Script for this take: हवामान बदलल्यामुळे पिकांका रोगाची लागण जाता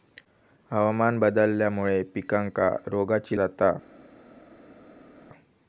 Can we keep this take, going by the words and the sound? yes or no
no